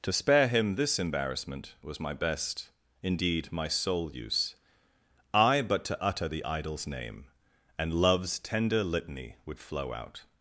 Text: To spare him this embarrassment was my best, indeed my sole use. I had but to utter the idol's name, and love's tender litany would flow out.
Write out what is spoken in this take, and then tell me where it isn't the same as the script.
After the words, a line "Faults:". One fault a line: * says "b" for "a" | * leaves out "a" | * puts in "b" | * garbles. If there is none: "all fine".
To spare him this embarrassment was my best, indeed my sole use. I but to utter the idol's name, and love's tender litany would flow out.
Faults:
* leaves out "had"